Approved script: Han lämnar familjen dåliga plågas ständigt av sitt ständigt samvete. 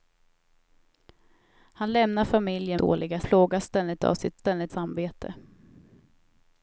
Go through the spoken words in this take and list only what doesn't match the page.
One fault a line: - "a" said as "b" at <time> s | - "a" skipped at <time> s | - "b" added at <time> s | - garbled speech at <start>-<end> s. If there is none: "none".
none